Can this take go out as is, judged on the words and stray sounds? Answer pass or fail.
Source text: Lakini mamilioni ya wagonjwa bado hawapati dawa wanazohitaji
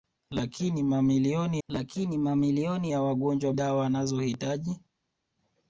fail